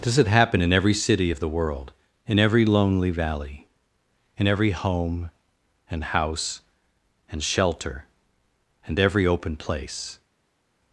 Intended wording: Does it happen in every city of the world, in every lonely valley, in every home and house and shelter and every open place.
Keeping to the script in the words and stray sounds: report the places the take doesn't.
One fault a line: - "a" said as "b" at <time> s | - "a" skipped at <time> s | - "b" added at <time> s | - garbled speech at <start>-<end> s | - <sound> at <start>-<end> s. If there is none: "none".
none